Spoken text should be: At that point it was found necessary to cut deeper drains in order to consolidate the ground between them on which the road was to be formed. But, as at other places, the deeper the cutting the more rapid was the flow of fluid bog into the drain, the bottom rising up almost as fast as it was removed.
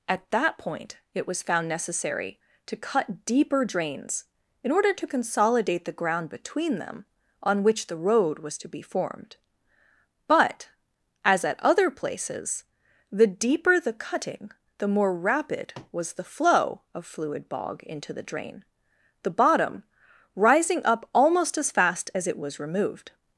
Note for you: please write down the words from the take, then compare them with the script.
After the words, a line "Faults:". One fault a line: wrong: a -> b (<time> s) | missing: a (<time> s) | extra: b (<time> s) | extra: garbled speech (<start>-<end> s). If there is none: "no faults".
At that point it was found necessary to cut deeper drains in order to consolidate the ground between them on which the road was to be formed. But, as at other places, the deeper the cutting the more rapid was the flow of fluid bog into the drain, the bottom rising up almost as fast as it was removed.
Faults:
no faults